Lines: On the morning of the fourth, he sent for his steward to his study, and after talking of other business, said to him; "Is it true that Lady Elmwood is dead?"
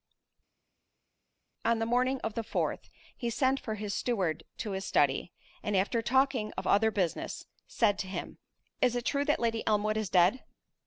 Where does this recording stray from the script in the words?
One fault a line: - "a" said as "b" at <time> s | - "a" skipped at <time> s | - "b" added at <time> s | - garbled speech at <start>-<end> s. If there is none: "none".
none